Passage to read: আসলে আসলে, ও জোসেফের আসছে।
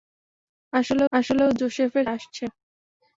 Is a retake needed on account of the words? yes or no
no